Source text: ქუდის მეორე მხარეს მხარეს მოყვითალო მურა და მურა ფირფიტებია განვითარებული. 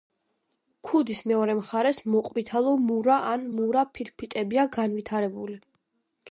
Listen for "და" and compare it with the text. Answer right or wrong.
wrong